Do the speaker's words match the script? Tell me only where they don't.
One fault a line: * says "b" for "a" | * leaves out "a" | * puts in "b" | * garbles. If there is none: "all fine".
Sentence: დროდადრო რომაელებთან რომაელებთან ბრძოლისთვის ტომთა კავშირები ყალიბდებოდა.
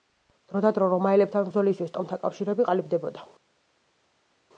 * leaves out "რომაელებთან"